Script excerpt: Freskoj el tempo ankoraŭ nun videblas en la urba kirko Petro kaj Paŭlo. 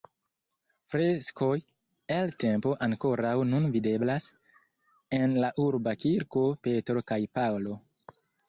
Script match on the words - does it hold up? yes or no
yes